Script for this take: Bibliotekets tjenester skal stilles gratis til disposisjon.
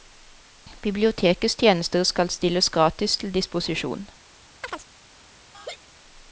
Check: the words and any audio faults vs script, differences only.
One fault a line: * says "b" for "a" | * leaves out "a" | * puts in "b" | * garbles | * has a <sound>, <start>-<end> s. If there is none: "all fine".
* has a chirp, 4.6-4.9 s
* has a laugh, 5.5-5.8 s